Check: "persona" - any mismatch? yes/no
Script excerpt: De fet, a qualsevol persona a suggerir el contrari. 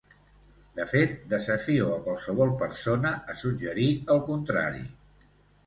no